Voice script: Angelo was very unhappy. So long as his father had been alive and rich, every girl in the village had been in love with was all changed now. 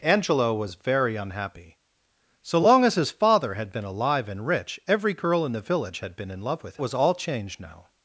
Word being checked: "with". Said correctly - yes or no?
yes